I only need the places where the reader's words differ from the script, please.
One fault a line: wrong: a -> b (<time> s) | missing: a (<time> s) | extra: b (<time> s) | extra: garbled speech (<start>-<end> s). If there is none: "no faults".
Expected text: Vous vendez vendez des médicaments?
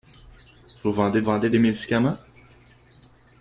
no faults